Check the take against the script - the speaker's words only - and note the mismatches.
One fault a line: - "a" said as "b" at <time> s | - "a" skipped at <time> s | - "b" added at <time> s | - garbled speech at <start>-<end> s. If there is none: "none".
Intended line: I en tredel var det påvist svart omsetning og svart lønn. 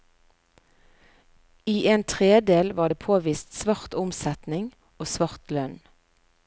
none